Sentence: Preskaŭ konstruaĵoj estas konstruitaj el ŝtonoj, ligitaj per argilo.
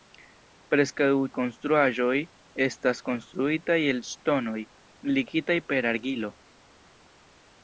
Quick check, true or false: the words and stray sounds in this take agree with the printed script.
true